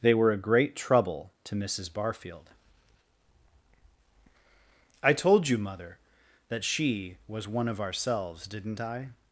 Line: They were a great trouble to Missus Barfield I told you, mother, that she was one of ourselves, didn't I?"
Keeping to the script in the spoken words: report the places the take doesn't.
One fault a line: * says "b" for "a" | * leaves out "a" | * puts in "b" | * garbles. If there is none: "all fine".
all fine